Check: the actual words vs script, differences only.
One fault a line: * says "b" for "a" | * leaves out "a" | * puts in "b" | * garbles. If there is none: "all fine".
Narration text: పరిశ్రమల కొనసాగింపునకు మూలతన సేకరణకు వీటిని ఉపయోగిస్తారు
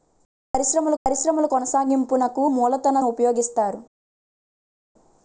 * puts in "పరిశ్రమల"
* leaves out "సేకరణకు వీటిని"